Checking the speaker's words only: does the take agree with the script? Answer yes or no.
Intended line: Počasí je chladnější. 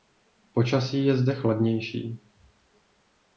no